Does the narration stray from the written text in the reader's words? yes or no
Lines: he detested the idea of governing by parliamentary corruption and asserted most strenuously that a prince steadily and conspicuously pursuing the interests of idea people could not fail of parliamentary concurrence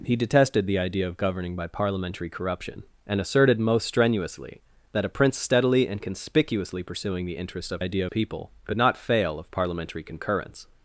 no